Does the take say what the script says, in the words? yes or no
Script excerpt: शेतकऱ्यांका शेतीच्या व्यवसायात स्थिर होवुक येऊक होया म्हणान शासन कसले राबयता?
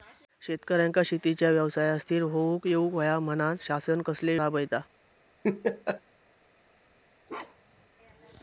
yes